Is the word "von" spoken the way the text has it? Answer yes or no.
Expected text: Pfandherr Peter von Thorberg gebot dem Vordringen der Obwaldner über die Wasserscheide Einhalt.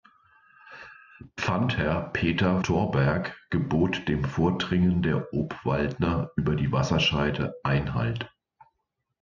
no